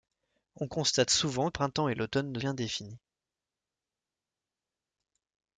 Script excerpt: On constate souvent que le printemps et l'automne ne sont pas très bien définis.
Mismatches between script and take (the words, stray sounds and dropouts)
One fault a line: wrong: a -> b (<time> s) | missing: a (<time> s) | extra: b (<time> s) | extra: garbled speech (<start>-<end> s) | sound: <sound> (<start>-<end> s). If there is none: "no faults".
missing: que le (1.5 s)
missing: sont pas très (2.4 s)